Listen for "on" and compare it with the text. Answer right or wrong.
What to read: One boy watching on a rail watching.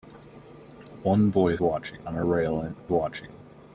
right